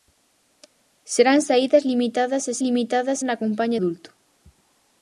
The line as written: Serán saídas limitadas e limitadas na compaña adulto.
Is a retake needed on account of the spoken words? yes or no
no